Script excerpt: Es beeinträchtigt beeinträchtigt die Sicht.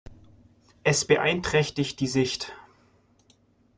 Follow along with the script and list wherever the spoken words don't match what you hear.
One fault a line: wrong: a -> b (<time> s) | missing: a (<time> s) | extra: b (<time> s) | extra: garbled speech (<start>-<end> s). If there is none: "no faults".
missing: beeinträchtigt (2.0 s)